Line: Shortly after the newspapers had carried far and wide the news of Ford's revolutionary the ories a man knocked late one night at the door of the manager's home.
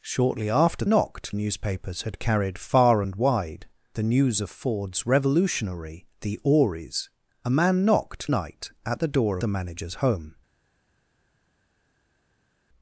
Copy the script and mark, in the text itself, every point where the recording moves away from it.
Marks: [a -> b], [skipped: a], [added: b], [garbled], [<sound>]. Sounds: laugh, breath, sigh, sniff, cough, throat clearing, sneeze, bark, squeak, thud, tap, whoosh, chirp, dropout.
Shortly after [the -> knocked] newspapers had carried far and wide the news of Ford's revolutionary the ories a man knocked [skipped: late one] night at the door [skipped: of] the manager's home.